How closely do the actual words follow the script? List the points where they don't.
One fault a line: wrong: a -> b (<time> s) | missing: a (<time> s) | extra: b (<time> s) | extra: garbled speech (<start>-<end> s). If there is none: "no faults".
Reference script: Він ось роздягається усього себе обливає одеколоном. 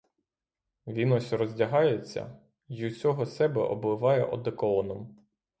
extra: й (2.7 s)